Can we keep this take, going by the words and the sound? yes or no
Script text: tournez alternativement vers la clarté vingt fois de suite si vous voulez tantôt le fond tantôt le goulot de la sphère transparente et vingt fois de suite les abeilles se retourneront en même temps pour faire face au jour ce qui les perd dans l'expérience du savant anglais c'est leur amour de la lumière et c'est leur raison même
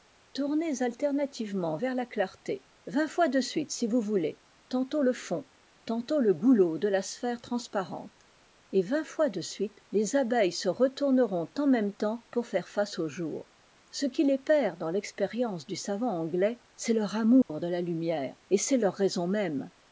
no